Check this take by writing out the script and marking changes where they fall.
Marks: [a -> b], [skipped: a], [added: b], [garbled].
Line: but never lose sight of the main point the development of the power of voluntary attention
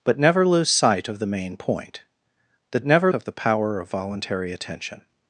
but never lose sight of the main point the [development -> never] of the power of voluntary attention